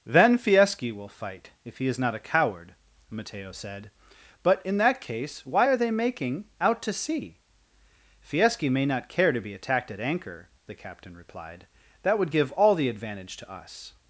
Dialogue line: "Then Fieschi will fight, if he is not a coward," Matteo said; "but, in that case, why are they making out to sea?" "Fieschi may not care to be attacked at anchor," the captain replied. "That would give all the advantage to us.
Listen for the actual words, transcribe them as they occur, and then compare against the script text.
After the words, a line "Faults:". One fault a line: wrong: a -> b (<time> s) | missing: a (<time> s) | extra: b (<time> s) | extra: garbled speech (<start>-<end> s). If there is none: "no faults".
"Then Fieschi will fight, if he is not a coward," Matteo said; "but, in that case, why are they making out to sea?" "Fieschi may not care to be attacked at anchor," the captain replied. "That would give all the advantage to us.
Faults:
no faults